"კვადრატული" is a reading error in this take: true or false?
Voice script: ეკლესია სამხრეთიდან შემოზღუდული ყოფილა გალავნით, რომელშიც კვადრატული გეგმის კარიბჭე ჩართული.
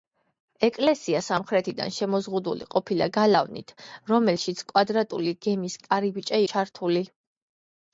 false